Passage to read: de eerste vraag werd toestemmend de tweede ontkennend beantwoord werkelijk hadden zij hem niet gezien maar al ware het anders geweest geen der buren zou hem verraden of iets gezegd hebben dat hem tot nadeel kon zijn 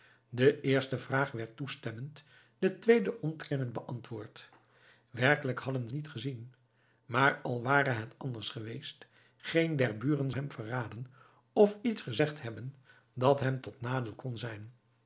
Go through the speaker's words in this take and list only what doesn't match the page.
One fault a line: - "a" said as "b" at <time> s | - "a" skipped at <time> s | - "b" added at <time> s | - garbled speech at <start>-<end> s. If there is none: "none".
- "zij hem" skipped at 5.9 s
- "zou" skipped at 10.3 s